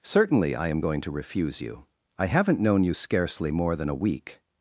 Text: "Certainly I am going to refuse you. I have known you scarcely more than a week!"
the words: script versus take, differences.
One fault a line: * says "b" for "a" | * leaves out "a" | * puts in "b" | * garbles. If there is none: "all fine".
* says "haven't" for "have"